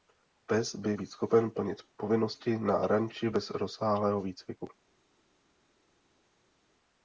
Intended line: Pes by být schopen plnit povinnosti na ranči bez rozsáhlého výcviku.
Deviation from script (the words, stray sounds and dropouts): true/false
false